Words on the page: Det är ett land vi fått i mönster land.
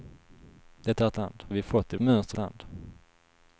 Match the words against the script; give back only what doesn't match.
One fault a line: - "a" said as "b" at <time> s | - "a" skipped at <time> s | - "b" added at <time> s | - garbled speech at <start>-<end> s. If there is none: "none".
none